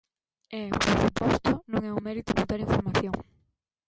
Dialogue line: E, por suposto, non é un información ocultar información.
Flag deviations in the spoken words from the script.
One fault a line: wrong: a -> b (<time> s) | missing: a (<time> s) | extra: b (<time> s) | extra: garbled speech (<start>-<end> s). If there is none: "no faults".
wrong: información -> mérito (2.1 s)